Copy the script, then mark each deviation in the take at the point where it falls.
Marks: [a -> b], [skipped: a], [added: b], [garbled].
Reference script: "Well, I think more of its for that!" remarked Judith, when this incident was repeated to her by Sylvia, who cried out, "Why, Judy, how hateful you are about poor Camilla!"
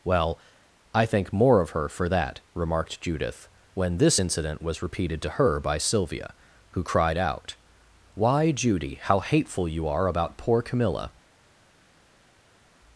"Well, I think more of [its -> her] for that!" remarked Judith, when this incident was repeated to her by Sylvia, who cried out, "Why, Judy, how hateful you are about poor Camilla!"